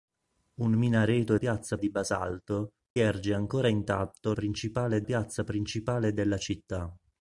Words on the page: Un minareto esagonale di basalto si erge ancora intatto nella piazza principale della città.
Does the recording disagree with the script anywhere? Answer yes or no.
yes